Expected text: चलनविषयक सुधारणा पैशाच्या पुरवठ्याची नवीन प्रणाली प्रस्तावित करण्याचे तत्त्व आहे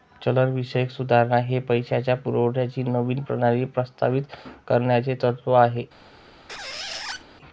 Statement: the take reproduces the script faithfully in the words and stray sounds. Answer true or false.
false